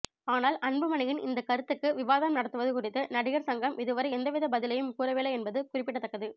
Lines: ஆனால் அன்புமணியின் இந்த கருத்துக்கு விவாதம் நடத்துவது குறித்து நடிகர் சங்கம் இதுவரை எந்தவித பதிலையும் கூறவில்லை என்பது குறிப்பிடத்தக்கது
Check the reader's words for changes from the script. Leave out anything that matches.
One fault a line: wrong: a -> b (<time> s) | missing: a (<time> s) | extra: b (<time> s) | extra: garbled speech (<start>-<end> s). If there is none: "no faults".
no faults